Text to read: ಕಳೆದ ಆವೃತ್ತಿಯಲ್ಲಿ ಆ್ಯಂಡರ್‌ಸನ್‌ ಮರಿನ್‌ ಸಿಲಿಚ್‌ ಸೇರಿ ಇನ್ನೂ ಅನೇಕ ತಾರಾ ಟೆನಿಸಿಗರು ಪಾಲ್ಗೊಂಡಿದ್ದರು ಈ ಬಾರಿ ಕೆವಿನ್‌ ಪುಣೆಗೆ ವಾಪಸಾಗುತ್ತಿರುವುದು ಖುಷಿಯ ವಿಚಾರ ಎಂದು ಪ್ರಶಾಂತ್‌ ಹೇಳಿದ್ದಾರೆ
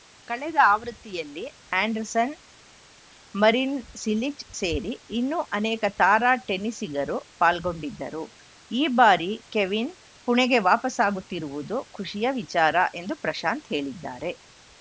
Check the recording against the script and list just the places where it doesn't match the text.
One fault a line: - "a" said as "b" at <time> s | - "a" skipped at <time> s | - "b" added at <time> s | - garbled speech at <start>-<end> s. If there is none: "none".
none